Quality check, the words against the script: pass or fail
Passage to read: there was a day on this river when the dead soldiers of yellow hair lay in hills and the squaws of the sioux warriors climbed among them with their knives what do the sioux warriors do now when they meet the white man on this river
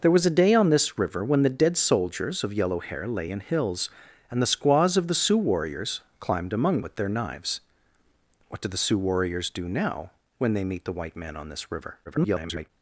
fail